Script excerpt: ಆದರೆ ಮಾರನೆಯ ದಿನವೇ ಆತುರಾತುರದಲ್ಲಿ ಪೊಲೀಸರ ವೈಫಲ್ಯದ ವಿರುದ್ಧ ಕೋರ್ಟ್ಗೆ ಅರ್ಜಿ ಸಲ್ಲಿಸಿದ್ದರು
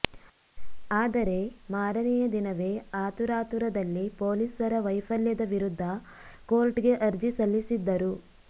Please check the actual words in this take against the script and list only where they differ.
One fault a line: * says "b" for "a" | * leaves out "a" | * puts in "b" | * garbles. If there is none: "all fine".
all fine